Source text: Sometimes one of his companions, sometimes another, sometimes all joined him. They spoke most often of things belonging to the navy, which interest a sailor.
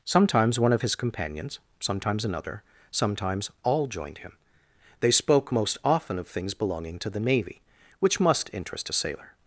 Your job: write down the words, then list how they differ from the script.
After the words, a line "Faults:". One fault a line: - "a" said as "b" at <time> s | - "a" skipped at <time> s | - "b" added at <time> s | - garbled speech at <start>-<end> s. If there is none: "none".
Sometimes one of his companions, sometimes another, sometimes all joined him. They spoke most often of things belonging to the navy, which must interest a sailor.
Faults:
- "must" added at 8.2 s